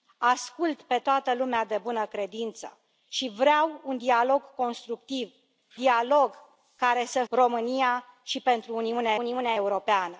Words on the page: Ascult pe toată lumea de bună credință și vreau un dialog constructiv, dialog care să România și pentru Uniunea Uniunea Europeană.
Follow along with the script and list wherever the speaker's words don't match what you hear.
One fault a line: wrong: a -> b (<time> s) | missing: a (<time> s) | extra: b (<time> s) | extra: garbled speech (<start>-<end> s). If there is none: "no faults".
no faults